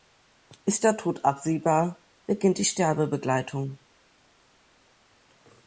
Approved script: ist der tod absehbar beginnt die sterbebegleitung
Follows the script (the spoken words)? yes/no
yes